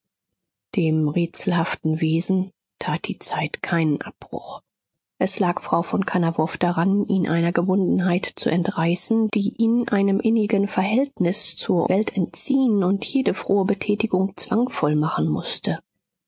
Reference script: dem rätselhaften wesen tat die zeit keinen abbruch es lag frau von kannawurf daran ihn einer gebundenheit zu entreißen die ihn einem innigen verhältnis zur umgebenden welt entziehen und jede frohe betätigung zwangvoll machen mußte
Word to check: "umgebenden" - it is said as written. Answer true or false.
false